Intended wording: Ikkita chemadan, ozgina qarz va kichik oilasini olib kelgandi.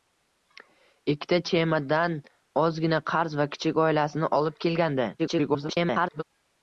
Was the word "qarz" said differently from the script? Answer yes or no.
no